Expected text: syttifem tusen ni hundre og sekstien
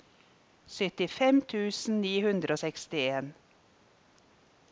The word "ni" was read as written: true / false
true